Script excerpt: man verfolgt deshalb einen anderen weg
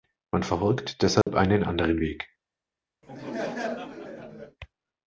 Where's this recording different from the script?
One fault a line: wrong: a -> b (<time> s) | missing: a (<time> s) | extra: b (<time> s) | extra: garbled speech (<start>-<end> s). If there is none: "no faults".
no faults